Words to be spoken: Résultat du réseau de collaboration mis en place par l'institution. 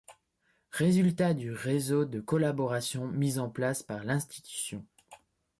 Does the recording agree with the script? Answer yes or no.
yes